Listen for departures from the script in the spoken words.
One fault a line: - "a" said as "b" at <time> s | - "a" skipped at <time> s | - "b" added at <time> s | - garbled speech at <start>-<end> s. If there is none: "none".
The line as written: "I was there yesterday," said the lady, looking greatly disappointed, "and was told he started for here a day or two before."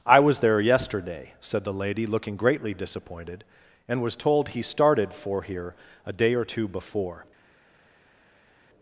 none